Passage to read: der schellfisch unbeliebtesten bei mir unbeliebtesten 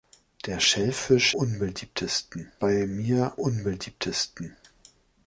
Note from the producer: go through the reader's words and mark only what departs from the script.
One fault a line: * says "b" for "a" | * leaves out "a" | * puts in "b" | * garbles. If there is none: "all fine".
all fine